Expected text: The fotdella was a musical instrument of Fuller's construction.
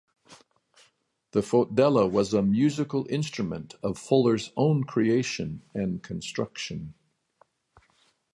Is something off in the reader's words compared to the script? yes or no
yes